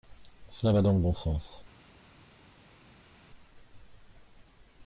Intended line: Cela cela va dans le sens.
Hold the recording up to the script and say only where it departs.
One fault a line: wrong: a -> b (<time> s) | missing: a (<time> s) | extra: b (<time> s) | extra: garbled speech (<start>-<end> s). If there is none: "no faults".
missing: cela (0.7 s)
extra: bon (1.0 s)